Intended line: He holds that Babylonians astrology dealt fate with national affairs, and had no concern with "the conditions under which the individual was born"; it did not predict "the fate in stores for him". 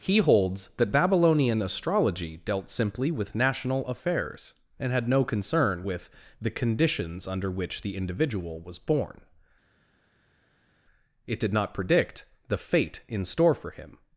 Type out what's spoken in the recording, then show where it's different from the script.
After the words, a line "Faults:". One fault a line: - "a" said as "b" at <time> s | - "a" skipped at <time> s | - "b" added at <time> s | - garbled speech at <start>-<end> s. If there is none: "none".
He holds that Babylonian astrology dealt simply with national affairs, and had no concern with "the conditions under which the individual was born"; it did not predict "the fate in store for him".
Faults:
- "Babylonians" said as "Babylonian" at 0.9 s
- "fate" said as "simply" at 2.7 s
- "stores" said as "store" at 13.2 s